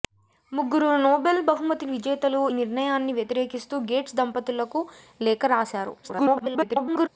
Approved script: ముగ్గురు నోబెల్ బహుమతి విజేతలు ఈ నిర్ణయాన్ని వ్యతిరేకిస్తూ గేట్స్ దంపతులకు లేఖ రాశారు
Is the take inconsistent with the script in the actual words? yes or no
yes